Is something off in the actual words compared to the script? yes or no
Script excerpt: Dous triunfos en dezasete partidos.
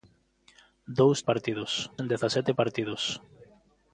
yes